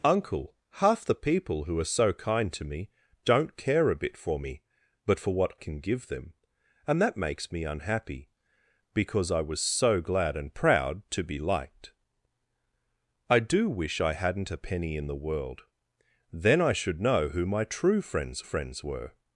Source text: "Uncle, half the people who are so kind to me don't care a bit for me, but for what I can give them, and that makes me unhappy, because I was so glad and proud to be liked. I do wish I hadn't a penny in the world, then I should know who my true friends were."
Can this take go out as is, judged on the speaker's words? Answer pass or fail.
fail